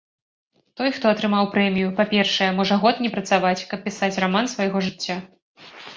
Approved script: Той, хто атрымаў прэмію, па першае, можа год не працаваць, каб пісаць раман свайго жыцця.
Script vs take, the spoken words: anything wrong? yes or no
no